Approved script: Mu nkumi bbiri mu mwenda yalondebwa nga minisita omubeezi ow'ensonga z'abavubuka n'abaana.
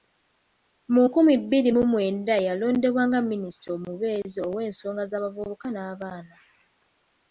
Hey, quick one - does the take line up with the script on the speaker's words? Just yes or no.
yes